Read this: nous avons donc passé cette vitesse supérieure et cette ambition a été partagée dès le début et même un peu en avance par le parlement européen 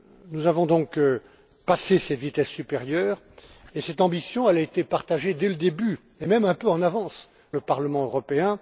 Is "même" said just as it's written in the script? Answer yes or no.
yes